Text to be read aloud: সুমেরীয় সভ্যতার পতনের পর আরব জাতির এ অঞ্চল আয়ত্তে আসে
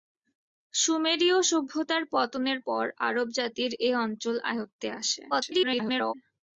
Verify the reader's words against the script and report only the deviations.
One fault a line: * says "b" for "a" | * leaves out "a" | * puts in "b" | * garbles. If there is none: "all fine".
* garbles